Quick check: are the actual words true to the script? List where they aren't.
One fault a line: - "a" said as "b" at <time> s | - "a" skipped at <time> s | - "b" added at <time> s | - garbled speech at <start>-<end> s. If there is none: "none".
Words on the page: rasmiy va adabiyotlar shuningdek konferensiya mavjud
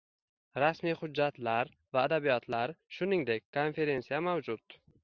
- "hujjatlar" added at 1.0 s